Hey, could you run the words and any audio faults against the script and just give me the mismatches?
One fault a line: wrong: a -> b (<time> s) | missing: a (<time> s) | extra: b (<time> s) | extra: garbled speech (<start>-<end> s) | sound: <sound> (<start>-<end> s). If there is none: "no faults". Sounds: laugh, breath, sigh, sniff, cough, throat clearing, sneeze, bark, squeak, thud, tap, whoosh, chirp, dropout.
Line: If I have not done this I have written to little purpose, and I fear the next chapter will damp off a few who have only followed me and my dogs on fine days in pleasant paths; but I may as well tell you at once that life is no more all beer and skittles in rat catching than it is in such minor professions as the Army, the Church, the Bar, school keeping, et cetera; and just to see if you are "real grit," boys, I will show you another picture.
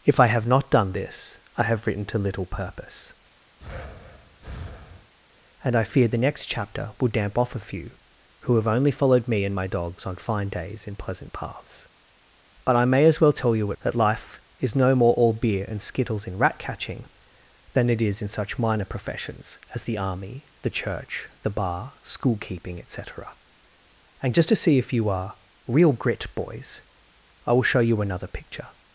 sound: breath (3.6-5.1 s)
missing: at once (13.7 s)